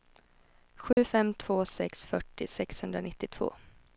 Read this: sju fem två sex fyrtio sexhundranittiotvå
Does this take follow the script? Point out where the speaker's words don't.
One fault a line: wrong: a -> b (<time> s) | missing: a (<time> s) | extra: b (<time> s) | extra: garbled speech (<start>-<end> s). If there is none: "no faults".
no faults